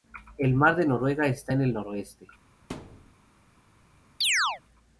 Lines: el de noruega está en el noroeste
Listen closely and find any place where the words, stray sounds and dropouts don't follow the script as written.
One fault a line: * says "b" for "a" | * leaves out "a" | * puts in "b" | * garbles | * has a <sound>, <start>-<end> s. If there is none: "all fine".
* puts in "mar"
* has a thud, 2.7-3.1 s
* has a chirp, 4.2-4.6 s